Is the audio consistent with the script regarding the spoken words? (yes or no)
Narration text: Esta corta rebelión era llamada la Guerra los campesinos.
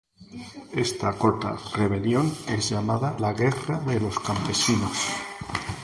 no